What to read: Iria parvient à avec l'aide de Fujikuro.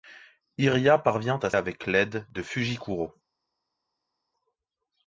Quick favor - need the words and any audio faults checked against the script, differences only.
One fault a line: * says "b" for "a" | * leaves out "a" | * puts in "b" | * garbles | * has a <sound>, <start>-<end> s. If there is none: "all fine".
all fine